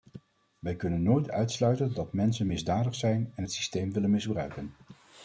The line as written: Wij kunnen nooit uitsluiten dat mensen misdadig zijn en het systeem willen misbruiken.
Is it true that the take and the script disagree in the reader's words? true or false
false